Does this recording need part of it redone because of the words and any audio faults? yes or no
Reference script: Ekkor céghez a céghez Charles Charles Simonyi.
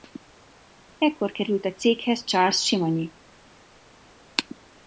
yes